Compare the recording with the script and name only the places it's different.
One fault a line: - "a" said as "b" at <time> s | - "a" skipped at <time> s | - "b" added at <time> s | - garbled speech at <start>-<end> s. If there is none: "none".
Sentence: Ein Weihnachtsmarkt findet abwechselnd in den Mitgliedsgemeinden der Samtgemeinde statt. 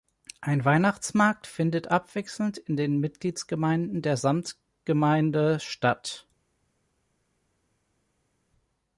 none